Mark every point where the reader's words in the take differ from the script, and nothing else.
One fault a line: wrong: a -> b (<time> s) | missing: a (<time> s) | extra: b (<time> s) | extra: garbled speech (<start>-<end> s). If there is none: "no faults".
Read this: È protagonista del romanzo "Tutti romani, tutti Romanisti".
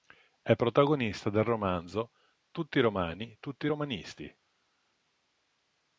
no faults